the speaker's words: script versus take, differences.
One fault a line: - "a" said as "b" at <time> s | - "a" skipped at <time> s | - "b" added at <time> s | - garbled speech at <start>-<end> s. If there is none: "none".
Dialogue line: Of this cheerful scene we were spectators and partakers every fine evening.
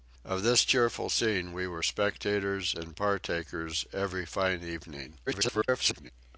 - garbled speech at 5.3-6.1 s